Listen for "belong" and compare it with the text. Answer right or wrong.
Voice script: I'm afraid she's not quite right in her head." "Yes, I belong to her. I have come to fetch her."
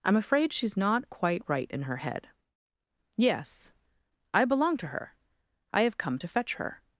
right